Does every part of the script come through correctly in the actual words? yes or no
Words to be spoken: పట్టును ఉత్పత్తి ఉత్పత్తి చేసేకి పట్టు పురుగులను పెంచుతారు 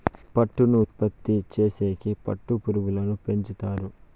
no